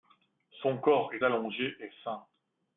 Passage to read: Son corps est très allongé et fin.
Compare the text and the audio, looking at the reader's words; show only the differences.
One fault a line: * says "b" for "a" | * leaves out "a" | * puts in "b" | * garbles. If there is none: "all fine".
* leaves out "très"